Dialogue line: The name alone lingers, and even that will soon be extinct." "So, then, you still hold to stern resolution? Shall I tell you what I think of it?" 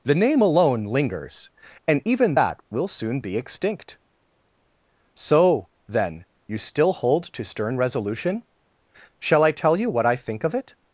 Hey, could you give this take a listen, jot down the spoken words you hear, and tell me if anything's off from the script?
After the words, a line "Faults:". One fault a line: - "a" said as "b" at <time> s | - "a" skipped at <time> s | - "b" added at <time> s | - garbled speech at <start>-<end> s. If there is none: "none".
The name alone lingers, and even that will soon be extinct." "So, then, you still hold to stern resolution? Shall I tell you what I think of it?"
Faults:
none